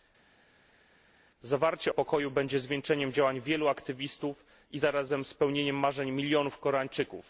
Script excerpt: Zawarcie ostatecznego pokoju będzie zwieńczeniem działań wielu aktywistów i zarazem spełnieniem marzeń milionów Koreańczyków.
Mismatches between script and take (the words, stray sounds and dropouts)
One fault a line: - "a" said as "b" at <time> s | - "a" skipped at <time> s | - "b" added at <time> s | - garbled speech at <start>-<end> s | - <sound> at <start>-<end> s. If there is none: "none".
- "ostatecznego" skipped at 1.9 s